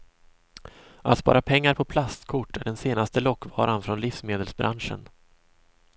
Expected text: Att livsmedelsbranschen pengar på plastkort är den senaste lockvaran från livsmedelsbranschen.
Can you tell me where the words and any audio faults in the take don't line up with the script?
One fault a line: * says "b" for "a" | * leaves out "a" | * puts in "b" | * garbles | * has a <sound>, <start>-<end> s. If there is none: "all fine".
* says "spara" for "livsmedelsbranschen"